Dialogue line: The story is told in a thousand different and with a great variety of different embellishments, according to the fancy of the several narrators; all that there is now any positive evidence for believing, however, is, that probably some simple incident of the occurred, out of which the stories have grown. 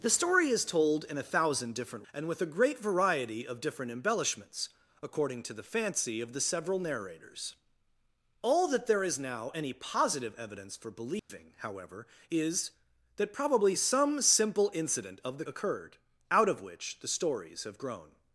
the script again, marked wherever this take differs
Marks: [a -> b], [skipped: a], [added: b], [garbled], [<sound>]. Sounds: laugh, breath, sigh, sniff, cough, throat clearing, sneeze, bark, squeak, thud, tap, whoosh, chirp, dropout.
The story is told in a thousand different and with a great variety of different embellishments, according to the fancy of the several narrators; all that there is now any positive evidence for believing, [dropout] however, is, that probably some simple incident of the occurred, out of which the stories have grown.